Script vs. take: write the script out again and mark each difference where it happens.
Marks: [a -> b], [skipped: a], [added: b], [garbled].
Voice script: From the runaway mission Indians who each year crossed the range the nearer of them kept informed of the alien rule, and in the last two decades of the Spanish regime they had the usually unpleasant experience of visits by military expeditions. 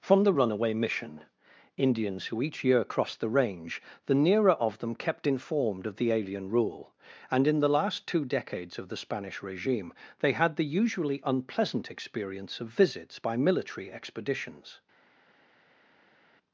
From the runaway mission Indians who each year crossed the range the nearer of them kept informed of the alien rule, and in the last two decades of the Spanish regime they had the usually unpleasant experience of visits by military expeditions.